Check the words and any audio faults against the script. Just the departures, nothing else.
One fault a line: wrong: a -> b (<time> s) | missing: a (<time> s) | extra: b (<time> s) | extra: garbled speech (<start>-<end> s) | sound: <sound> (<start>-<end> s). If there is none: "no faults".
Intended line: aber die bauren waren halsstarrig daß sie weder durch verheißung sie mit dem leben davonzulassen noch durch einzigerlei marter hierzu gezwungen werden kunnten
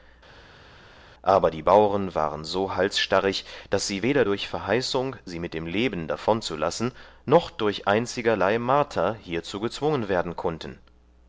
extra: so (2.4 s)